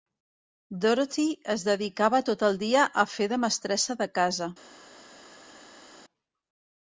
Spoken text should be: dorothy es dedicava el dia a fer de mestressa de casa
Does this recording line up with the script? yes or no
no